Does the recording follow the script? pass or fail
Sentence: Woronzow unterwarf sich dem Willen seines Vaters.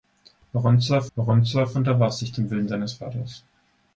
fail